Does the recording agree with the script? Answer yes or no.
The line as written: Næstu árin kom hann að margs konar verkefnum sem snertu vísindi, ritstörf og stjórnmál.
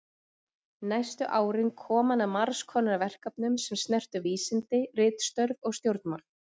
yes